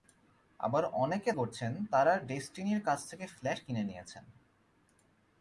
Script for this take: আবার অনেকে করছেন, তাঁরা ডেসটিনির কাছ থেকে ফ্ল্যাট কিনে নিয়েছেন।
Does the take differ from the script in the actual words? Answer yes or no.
no